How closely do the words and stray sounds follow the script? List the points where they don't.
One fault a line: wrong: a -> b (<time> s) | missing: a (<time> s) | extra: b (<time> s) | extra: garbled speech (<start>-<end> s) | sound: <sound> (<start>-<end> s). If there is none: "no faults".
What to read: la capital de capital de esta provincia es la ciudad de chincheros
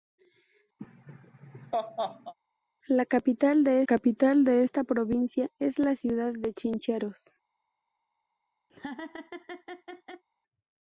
sound: laugh (0.8-2.3 s)
sound: laugh (8.7-10.2 s)